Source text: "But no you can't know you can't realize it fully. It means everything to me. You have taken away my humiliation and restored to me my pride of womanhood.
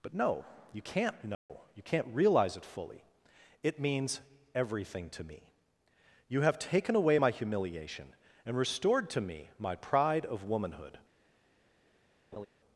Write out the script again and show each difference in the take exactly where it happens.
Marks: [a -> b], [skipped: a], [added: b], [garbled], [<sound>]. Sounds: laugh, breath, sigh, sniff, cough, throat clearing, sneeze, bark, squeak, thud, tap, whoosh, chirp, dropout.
"But no you can't know [dropout] you can't realize it fully. It means everything to me. You have taken away my humiliation and restored to me my pride of womanhood. [laugh]